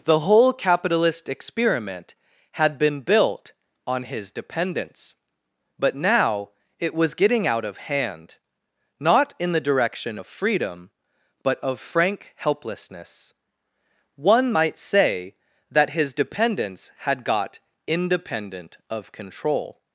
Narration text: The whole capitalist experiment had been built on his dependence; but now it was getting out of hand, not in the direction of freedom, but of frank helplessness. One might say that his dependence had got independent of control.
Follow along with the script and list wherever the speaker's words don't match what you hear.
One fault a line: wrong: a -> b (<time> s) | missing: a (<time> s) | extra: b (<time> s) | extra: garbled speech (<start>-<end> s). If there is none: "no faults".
no faults